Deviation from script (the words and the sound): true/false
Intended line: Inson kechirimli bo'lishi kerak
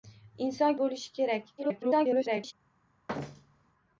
true